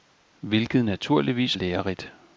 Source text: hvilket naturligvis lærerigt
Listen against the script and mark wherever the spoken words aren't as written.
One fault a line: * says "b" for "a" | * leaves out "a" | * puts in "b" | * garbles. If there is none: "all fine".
all fine